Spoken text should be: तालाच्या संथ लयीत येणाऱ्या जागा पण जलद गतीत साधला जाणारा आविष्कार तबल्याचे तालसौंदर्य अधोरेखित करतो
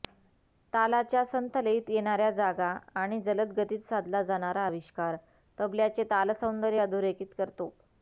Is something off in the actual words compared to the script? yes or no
yes